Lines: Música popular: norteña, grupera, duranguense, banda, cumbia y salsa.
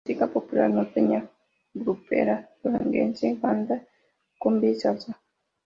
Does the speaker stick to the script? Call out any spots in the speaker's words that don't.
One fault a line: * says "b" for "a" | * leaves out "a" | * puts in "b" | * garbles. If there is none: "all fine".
all fine